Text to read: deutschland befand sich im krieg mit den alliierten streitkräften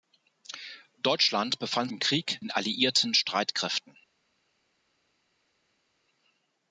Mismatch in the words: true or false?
true